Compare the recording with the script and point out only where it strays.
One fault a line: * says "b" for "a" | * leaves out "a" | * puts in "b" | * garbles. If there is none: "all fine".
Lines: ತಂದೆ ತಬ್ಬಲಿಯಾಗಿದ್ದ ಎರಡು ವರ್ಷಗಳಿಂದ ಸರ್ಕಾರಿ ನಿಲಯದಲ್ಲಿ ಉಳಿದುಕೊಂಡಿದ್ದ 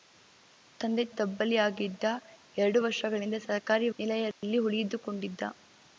all fine